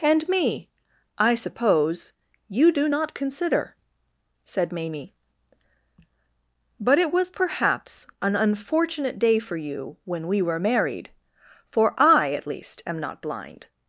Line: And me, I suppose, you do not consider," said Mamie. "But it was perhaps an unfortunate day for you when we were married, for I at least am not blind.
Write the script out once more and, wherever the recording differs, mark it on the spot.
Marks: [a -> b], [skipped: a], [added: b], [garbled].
And me, I suppose, you do not consider," said Mamie. "But it was perhaps an unfortunate day for you when we were married, for I at least am not blind.